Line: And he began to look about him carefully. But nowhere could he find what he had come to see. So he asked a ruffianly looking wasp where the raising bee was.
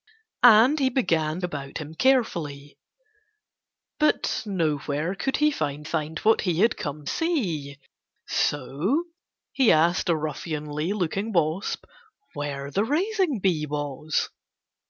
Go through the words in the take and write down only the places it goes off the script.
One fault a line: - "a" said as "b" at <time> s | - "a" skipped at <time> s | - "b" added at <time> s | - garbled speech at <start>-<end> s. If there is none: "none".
- "to look" skipped at 1.4 s
- "find" added at 5.8 s
- "to" skipped at 7.1 s